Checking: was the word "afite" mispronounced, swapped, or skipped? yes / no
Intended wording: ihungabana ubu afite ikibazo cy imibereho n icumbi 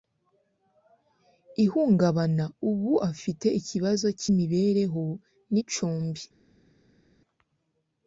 no